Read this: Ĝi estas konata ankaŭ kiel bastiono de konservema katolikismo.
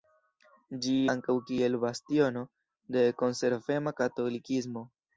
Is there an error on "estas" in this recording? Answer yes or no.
yes